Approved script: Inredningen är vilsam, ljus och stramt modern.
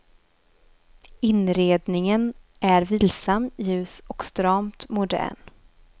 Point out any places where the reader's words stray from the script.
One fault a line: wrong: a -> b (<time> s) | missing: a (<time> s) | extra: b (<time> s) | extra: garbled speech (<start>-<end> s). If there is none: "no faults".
no faults